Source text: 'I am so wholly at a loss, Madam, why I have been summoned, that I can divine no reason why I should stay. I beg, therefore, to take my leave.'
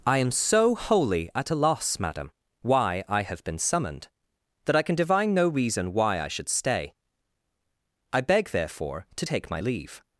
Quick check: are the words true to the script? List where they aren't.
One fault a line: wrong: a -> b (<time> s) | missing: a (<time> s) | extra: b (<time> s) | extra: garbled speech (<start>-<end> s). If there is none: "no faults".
no faults